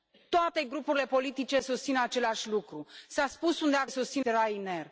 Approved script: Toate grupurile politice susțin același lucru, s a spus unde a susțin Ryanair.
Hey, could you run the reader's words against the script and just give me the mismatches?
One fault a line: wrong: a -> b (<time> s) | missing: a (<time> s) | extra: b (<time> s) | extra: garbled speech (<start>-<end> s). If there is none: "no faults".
no faults